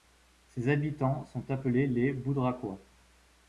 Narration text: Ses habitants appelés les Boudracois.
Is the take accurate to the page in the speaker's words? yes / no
no